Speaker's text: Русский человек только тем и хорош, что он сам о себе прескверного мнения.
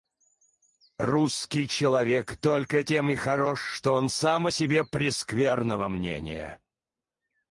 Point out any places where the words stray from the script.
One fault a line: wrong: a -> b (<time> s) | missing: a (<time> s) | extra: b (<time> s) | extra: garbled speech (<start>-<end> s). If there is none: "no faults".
no faults